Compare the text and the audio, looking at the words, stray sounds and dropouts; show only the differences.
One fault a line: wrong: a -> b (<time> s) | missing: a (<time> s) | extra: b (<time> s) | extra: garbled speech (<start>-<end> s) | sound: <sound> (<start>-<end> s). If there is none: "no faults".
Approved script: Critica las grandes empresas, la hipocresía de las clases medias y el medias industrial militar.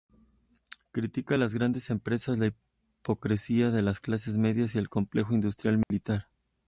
wrong: medias -> complejo (4.9 s)
sound: dropout (5.8-5.9 s)